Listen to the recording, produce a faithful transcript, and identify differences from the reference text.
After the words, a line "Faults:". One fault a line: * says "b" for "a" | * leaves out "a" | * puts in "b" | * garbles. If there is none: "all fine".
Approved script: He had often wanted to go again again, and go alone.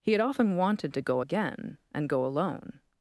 He had often wanted to go again, and go alone.
Faults:
* leaves out "again"